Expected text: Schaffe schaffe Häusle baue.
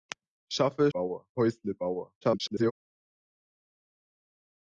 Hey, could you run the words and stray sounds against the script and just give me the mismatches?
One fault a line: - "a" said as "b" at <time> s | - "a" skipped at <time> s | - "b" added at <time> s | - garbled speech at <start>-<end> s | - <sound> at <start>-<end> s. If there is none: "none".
- "schaffe" said as "baue" at 0.9 s
- garbled speech at 2.2-2.7 s